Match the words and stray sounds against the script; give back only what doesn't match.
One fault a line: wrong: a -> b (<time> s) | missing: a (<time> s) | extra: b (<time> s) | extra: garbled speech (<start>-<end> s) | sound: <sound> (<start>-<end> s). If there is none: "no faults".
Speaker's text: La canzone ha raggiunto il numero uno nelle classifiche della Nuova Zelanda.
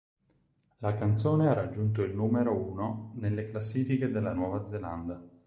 no faults